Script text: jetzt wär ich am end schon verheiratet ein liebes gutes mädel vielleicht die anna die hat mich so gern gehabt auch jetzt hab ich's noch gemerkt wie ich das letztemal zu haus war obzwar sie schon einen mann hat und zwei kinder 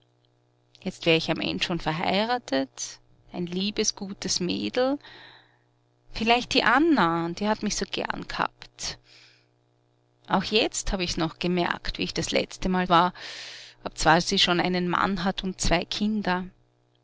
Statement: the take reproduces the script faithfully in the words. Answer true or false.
false